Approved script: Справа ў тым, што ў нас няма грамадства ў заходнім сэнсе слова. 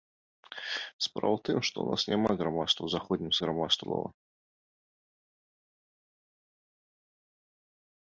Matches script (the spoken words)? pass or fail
fail